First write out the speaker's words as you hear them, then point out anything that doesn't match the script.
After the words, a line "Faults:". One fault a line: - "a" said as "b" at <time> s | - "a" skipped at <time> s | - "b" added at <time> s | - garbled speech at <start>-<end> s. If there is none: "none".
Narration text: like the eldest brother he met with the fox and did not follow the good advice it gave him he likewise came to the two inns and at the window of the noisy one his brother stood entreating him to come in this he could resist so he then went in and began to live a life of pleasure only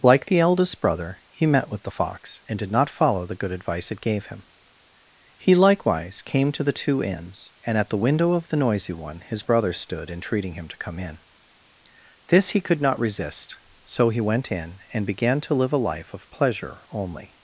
like the eldest brother he met with the fox and did not follow the good advice it gave him he likewise came to the two inns and at the window of the noisy one his brother stood entreating him to come in this he could not resist so he went in and began to live a life of pleasure only
Faults:
- "not" added at 12.8 s
- "then" skipped at 14.2 s